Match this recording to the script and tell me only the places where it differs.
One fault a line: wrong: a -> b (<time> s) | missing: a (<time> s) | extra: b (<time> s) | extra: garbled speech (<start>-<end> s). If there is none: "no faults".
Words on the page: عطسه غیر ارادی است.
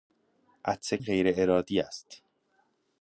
no faults